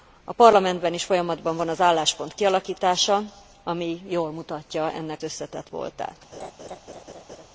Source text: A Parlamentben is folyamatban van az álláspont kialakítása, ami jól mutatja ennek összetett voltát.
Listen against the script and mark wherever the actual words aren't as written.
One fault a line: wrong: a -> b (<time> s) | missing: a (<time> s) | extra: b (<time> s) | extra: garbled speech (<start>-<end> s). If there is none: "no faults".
no faults